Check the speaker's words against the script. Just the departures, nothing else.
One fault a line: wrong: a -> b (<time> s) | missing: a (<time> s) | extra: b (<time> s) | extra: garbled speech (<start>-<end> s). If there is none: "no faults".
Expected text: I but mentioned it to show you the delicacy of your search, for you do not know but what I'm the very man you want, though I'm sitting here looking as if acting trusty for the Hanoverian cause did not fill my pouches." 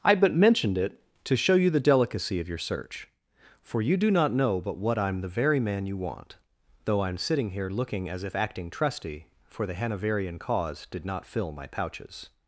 no faults